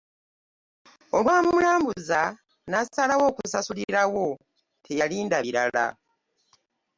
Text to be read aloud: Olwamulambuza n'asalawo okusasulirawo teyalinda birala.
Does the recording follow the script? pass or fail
pass